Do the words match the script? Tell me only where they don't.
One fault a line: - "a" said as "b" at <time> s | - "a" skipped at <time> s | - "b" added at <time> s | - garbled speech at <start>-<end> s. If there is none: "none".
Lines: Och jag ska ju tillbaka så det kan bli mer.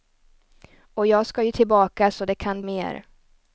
- "bli" skipped at 2.6 s